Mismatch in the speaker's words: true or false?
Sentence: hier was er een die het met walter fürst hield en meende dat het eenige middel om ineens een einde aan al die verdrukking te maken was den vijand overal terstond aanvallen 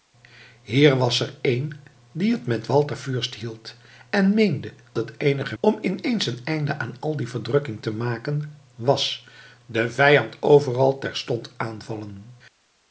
true